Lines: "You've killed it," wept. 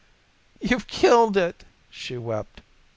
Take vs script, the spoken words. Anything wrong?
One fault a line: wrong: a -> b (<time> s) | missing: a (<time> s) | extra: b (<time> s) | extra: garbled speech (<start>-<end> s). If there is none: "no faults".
extra: she (1.9 s)